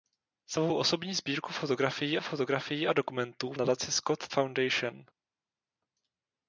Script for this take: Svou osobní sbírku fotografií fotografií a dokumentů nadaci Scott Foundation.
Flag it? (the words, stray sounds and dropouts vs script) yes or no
no